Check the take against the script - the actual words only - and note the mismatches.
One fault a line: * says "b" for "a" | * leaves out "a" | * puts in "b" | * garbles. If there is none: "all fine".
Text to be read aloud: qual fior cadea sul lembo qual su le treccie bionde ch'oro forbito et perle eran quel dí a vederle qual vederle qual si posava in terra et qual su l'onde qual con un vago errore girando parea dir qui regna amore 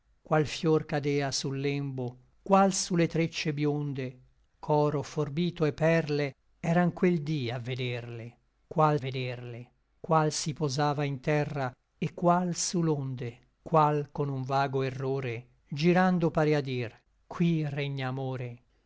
all fine